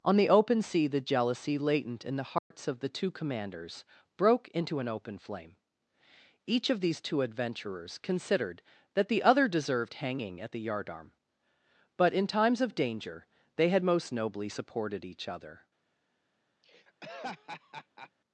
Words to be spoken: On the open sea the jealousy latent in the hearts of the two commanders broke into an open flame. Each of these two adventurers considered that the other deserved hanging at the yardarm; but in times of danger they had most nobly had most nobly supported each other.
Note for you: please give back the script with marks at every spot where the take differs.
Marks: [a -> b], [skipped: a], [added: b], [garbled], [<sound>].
On the open sea the jealousy latent in the hearts [dropout] of the two commanders broke into an open flame. Each of these two adventurers considered that the other deserved hanging at the yardarm; but in times of danger they had most nobly [skipped: had most nobly] supported each other. [laugh]